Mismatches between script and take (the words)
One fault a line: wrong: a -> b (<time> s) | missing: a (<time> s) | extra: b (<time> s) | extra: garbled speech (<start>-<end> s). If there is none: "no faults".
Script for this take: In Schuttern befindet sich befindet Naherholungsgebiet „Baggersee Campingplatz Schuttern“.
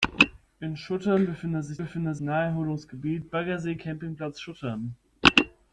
no faults